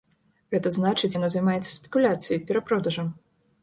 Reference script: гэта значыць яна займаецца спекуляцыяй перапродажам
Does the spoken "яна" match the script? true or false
true